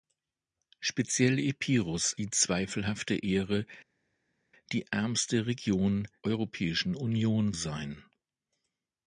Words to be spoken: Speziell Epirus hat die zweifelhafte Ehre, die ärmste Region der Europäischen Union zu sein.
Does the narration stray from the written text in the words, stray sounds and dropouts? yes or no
yes